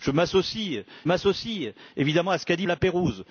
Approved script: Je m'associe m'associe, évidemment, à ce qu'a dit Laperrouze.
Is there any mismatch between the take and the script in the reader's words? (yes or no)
no